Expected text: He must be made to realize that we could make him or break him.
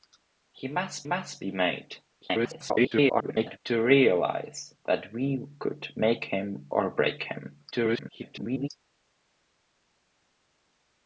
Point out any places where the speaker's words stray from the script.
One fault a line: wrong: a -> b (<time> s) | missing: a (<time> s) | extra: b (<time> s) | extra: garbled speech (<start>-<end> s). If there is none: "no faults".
extra: must (1.0 s)
extra: garbled speech (2.2-3.6 s)
extra: garbled speech (7.7-8.7 s)